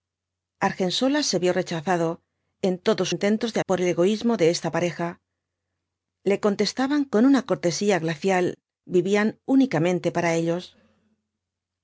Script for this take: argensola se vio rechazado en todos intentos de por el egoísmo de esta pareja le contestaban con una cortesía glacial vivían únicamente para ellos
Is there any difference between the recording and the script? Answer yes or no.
no